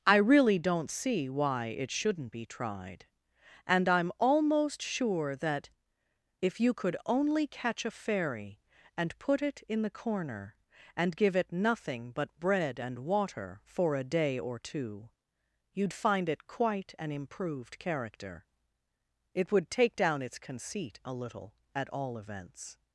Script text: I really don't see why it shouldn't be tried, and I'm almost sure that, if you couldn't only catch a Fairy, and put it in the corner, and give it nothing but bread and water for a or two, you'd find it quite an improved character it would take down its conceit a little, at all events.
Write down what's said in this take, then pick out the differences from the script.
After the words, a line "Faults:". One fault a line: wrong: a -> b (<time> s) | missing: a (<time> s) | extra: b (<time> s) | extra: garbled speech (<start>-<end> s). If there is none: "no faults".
I really don't see why it shouldn't be tried, and I'm almost sure that, if you could only catch a Fairy, and put it in the corner, and give it nothing but bread and water for a day or two, you'd find it quite an improved character it would take down its conceit a little, at all events.
Faults:
wrong: couldn't -> could (6.7 s)
extra: day (14.0 s)